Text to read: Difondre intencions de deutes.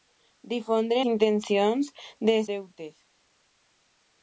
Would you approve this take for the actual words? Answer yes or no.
yes